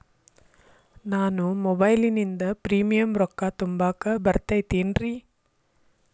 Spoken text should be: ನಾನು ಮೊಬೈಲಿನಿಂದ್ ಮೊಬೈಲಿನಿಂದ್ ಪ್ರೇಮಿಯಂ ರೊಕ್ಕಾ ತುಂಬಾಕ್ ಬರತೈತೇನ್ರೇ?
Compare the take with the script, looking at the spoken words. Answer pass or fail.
fail